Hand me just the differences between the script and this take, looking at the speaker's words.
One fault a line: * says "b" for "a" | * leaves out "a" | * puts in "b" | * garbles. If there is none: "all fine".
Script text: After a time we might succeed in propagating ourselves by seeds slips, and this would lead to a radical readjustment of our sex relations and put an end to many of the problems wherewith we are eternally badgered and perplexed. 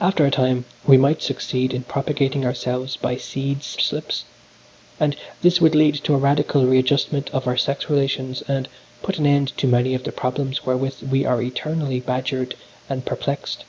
all fine